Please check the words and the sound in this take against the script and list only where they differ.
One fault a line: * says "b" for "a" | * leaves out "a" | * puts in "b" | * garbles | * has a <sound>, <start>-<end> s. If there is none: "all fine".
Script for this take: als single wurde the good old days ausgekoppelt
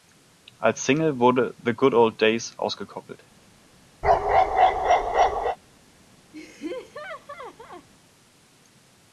* has a bark, 4.0-5.6 s
* has a laugh, 6.3-7.9 s